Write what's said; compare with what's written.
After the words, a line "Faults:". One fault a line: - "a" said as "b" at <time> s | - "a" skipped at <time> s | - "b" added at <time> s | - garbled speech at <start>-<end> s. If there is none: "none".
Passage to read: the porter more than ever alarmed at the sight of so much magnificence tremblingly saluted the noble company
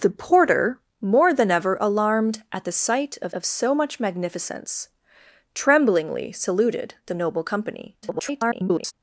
the porter more than ever alarmed at the sight of of so much magnificence tremblingly saluted the noble company [garbled]
Faults:
- "of" added at 3.3 s
- garbled speech at 8.0-8.9 s